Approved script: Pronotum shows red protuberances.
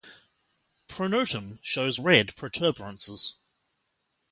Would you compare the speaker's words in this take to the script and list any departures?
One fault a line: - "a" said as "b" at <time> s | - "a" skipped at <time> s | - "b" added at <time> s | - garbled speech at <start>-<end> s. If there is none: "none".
none